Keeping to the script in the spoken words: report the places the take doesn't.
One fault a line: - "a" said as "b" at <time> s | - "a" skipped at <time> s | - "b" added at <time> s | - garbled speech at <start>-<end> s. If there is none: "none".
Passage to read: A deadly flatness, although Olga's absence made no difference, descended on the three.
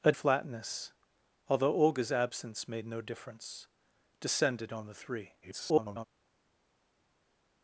- "deadly" skipped at 0.1 s
- garbled speech at 5.4-6.1 s